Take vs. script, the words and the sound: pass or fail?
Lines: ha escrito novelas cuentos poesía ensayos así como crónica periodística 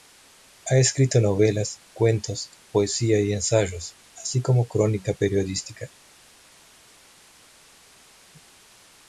fail